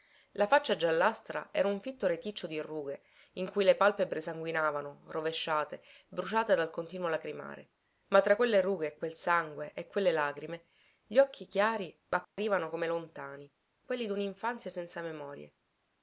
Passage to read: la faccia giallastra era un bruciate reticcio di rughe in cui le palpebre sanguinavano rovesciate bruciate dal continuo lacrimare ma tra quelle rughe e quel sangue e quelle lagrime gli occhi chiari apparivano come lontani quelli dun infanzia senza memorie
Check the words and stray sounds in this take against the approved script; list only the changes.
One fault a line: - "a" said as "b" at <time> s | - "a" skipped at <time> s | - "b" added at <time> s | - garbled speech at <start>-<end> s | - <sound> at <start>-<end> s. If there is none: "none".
- "bruciate" said as "fitto" at 1.8 s
- dropout at 12.2-12.4 s